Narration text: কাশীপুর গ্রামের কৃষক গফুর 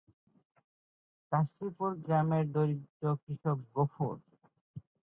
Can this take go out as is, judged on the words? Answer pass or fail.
fail